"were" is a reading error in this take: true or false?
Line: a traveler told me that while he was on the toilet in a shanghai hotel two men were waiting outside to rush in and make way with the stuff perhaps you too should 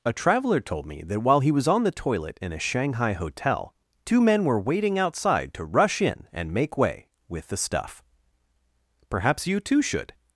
false